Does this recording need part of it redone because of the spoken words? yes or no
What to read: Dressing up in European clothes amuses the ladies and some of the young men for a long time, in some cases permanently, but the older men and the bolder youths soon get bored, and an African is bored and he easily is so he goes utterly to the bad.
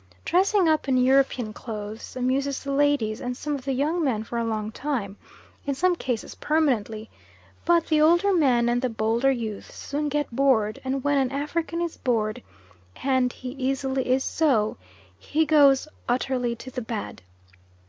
yes